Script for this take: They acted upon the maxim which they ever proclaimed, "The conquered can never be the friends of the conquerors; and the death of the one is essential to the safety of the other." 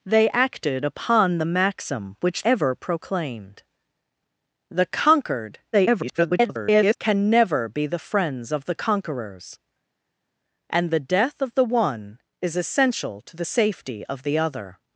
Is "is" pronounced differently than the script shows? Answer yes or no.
no